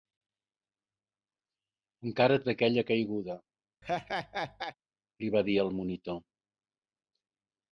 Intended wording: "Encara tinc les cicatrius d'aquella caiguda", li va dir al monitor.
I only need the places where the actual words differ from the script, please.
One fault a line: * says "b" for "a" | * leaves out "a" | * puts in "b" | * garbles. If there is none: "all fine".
* leaves out "tinc les cicatrius"